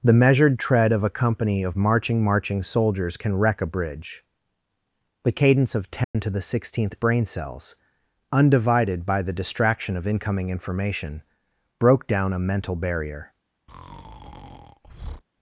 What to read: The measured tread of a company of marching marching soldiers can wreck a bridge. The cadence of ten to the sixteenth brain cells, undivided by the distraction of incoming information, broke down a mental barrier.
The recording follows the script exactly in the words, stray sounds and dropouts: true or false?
false